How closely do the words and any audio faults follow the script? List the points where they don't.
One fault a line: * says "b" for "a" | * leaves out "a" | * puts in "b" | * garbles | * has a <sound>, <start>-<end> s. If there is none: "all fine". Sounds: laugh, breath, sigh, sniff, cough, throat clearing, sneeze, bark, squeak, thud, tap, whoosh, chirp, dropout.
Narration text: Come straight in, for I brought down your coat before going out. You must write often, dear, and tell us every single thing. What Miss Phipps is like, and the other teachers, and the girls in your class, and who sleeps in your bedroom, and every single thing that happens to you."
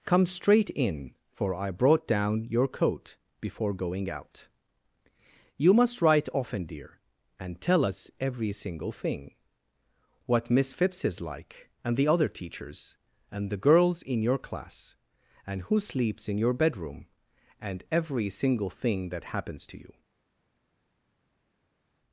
all fine